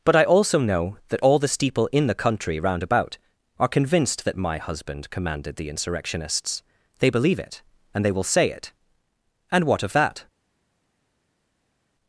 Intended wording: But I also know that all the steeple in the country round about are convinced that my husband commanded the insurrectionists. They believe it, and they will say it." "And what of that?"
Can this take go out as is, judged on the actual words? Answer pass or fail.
pass